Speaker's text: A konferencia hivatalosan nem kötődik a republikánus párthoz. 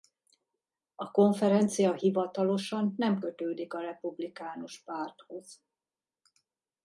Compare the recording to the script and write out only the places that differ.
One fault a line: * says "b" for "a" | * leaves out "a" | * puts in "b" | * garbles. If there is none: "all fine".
all fine